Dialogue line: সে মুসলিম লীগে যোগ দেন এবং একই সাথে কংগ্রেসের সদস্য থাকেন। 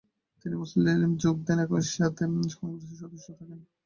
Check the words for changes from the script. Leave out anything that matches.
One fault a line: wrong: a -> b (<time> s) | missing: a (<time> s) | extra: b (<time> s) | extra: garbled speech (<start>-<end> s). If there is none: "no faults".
wrong: সে -> তিনি (0.4 s)